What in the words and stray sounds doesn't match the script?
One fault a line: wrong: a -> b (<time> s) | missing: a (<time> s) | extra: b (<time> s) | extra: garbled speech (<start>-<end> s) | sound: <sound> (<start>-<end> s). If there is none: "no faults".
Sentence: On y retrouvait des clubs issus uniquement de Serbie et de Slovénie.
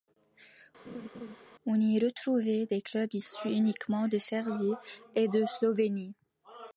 sound: laugh (0.8-1.4 s)